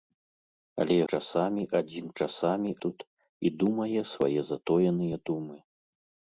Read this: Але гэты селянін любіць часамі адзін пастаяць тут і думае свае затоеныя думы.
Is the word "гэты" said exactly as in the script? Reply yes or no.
no